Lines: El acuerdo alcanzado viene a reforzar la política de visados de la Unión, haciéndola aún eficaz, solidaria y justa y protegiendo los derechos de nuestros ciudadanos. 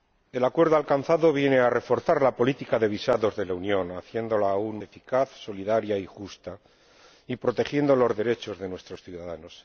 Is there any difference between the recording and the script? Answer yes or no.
no